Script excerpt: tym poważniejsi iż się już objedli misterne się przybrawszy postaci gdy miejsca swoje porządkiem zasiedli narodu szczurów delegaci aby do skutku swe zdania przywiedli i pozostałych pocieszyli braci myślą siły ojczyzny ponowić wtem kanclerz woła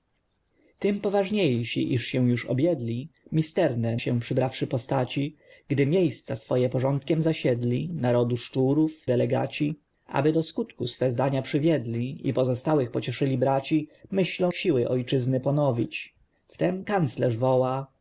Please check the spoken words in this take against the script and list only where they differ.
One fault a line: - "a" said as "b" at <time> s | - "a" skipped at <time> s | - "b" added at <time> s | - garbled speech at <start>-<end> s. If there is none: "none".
none